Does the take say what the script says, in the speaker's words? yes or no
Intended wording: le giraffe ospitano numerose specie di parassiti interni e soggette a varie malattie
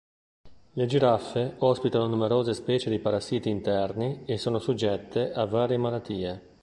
no